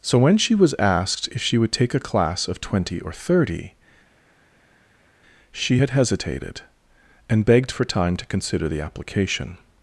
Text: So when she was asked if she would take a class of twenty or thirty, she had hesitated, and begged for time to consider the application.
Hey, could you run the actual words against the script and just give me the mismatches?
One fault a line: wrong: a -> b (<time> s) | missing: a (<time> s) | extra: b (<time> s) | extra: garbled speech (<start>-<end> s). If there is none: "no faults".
no faults